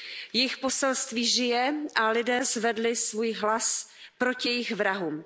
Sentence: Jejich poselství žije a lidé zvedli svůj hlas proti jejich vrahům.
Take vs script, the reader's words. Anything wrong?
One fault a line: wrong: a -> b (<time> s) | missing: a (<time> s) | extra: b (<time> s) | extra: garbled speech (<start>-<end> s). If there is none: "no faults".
no faults